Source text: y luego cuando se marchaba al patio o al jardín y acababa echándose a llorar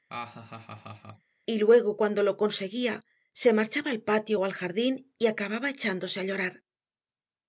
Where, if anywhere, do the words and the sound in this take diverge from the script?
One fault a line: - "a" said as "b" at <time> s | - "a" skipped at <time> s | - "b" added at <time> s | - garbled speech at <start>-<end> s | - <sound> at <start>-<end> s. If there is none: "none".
- laugh at 0.1-1.3 s
- "lo conseguía" added at 2.2 s